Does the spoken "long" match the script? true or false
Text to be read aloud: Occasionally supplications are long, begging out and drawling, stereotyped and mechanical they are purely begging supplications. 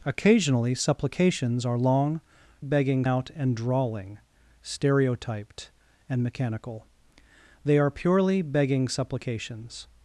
true